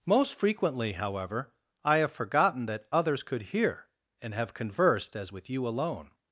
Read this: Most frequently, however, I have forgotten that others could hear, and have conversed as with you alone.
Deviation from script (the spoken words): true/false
false